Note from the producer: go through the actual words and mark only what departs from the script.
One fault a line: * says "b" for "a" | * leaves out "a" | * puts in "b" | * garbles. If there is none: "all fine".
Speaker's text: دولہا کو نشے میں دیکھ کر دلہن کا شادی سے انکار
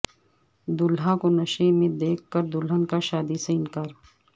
all fine